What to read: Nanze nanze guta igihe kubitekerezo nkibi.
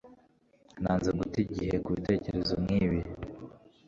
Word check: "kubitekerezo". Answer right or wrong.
right